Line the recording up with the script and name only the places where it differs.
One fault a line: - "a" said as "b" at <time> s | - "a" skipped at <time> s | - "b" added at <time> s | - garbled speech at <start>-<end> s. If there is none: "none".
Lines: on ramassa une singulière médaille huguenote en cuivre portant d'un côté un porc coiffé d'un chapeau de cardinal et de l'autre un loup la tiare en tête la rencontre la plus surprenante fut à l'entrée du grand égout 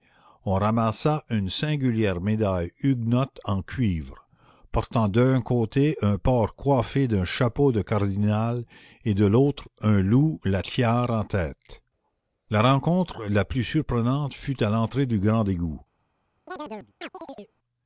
none